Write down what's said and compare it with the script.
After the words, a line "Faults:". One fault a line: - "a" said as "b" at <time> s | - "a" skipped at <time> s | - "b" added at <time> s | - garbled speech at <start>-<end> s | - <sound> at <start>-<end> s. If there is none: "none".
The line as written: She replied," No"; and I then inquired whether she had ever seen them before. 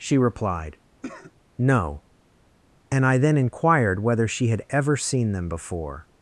She replied," No"; and I then inquired whether she had ever seen them before.
Faults:
- cough at 1.0-1.3 s